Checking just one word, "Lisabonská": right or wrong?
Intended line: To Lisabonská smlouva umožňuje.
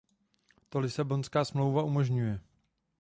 right